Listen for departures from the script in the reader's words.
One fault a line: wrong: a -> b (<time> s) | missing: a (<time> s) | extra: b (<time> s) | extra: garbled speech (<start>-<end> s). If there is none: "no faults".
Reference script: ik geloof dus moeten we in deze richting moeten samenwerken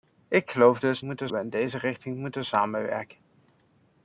no faults